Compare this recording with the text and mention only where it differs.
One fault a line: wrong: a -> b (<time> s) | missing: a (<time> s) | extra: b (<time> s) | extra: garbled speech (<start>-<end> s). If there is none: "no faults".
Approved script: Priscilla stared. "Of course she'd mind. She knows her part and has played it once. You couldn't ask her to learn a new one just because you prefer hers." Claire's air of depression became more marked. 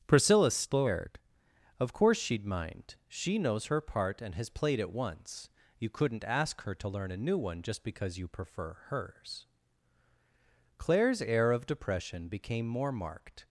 no faults